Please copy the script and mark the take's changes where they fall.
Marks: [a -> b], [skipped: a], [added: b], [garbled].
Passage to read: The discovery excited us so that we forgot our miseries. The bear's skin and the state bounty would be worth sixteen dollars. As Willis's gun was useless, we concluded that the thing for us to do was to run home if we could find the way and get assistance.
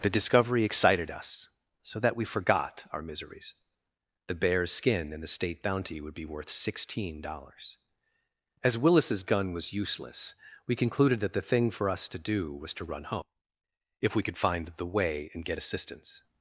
The discovery excited us so that we forgot our miseries. The bear's skin and the state bounty would be worth sixteen dollars. As Willis's gun was useless, we concluded that the thing for us to do was to run home if we could find the way and get assistance.